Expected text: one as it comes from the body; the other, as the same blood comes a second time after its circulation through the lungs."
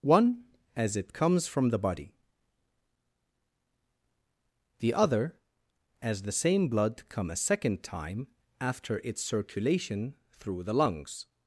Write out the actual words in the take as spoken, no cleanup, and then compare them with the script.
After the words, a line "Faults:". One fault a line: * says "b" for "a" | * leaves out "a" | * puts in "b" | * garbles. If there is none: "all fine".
one as it comes from the body; the other, as the same blood come a second time after its circulation through the lungs."
Faults:
* says "come" for "comes"